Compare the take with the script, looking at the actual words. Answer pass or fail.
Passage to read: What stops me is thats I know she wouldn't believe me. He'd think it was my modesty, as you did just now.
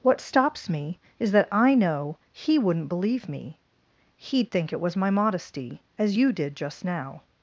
fail